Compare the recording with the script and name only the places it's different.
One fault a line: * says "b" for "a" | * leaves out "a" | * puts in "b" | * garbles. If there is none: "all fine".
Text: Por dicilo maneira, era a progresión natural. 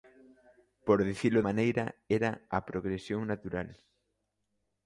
all fine